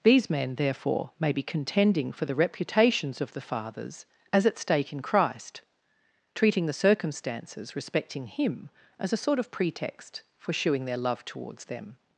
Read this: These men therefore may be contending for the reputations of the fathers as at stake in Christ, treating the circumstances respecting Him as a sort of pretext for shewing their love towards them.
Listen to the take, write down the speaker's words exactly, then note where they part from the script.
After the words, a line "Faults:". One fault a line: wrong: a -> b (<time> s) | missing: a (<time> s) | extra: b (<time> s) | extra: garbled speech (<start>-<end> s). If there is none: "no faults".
These men therefore may be contending for the reputations of the fathers as at stake in Christ, treating the circumstances respecting Him as a sort of pretext for shewing their love towards them.
Faults:
no faults